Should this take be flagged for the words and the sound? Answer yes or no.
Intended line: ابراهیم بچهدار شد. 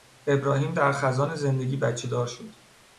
yes